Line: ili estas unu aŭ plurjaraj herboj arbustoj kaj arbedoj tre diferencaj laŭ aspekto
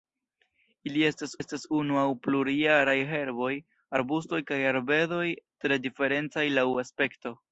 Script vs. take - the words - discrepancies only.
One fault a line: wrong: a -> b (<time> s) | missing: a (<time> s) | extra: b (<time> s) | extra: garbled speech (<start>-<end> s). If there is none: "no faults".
extra: estas (1.4 s)